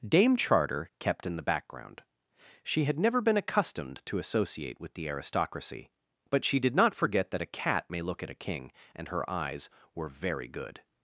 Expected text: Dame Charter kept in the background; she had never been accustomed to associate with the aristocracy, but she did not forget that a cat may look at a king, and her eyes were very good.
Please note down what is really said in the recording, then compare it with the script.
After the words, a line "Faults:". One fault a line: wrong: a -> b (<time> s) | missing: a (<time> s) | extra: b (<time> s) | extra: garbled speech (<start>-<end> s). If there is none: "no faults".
Dame Charter kept in the background; she had never been accustomed to associate with the aristocracy, but she did not forget that a cat may look at a king, and her eyes were very good.
Faults:
no faults